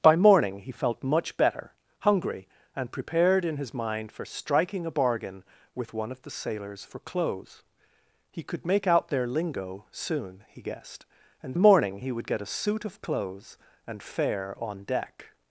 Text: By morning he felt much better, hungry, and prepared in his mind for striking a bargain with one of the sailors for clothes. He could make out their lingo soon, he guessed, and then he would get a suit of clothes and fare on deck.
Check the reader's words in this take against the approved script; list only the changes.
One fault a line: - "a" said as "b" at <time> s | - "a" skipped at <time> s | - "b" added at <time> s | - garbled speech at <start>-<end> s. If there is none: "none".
- "then" said as "morning" at 11.5 s